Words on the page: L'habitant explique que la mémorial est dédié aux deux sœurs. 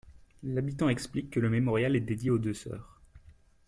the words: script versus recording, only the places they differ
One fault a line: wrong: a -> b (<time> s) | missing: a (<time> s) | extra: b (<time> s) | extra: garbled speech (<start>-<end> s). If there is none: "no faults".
wrong: la -> le (1.4 s)